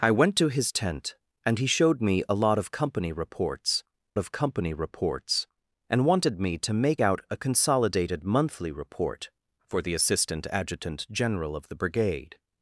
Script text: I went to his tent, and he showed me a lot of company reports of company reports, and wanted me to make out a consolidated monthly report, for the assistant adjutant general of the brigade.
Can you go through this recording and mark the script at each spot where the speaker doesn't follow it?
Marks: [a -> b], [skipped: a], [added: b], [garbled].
I went to his tent, and he showed me a lot of company reports of company reports, and wanted me to make out a consolidated monthly report, for the assistant adjutant general of the brigade.